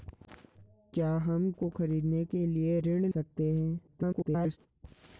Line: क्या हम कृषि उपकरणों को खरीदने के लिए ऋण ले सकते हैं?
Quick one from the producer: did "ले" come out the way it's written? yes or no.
no